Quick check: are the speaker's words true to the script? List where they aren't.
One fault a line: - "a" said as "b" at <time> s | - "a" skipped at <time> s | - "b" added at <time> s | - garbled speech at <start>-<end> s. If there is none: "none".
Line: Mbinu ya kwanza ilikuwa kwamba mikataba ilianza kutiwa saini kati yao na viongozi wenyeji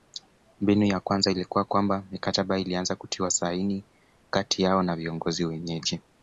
none